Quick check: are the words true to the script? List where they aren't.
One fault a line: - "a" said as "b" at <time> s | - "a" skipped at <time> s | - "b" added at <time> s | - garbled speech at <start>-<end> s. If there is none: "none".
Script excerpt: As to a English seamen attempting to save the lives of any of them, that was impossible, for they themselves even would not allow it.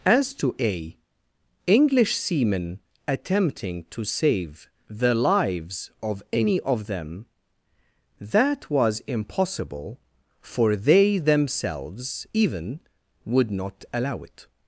none